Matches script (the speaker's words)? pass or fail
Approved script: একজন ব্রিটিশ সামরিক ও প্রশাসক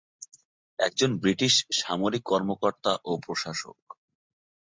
fail